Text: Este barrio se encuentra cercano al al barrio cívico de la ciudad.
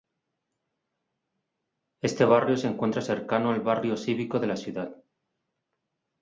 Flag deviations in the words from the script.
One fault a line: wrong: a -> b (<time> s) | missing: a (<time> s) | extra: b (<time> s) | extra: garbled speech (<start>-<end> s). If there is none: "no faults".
missing: al (3.6 s)